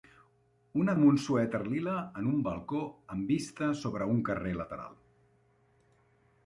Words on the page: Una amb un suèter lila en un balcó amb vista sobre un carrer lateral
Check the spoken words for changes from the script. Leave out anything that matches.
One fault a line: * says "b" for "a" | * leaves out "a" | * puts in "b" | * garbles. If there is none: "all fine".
all fine